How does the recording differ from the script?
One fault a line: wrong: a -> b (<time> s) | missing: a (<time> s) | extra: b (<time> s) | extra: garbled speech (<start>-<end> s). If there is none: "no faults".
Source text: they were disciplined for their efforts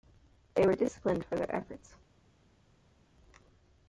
no faults